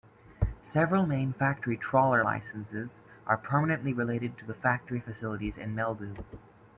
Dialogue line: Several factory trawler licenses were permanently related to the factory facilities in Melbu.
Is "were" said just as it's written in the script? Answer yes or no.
no